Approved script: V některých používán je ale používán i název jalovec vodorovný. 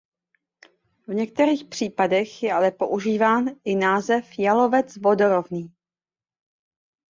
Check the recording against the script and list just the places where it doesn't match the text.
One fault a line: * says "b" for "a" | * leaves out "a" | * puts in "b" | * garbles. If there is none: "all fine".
* says "případech" for "používán"